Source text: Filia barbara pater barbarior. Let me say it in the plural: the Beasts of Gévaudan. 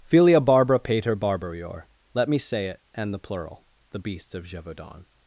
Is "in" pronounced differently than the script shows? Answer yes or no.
yes